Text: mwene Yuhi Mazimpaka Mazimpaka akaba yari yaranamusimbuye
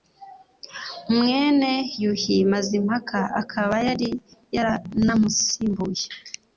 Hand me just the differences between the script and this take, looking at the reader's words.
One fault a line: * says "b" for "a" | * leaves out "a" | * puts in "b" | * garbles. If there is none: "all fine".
* leaves out "Mazimpaka"